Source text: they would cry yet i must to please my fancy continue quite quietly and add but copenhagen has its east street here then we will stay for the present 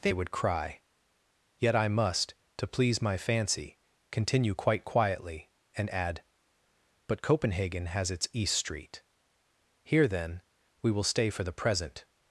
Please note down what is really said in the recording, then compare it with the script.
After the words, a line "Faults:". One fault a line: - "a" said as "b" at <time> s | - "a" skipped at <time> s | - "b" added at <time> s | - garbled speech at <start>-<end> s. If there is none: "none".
they would cry yet i must to please my fancy continue quite quietly and add but copenhagen has its east street here then we will stay for the present
Faults:
none